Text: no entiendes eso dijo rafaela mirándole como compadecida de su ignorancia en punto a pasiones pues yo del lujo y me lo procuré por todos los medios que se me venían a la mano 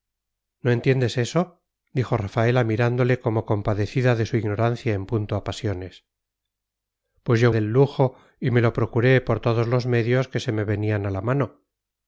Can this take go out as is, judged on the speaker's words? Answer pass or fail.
pass